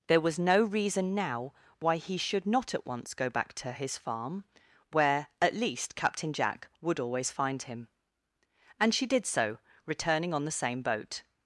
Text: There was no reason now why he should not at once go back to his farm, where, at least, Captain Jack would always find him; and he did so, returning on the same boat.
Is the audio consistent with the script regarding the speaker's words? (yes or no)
no